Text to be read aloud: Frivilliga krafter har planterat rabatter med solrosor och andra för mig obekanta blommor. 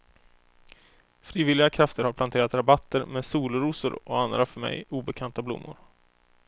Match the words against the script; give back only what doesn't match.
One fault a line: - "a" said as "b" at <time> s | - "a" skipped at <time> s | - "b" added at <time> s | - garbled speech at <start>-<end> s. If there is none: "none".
none